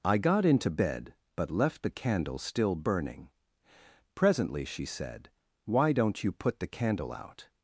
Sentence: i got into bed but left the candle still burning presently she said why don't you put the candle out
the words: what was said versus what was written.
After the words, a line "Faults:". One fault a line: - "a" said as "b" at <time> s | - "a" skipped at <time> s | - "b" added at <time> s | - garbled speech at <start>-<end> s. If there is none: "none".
i got into bed but left the candle still burning presently she said why don't you put the candle out
Faults:
none